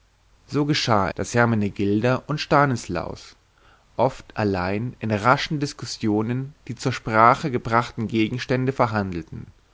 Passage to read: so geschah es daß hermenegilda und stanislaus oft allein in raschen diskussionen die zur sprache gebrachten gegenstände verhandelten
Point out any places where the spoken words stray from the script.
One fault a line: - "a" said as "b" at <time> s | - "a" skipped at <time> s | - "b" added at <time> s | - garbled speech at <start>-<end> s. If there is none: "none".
- "es" skipped at 1.1 s